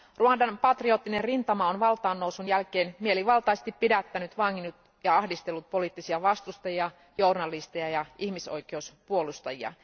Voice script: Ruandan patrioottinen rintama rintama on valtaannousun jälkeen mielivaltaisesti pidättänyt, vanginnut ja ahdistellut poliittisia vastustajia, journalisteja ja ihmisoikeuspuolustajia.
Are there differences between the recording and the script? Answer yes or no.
yes